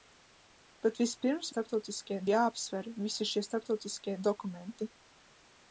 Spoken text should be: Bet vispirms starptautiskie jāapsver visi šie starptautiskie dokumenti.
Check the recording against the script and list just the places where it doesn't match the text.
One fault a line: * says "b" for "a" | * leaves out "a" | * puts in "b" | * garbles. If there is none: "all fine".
all fine